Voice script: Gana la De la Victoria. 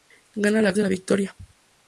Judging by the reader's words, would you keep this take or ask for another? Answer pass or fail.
pass